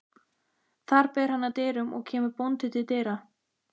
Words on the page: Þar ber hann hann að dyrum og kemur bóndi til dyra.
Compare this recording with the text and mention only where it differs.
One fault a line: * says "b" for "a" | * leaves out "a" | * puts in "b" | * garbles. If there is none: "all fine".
* leaves out "hann"